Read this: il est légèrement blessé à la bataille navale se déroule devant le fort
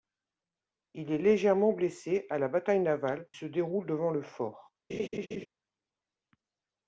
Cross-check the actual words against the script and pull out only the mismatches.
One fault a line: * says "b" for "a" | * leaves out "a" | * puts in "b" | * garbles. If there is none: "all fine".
all fine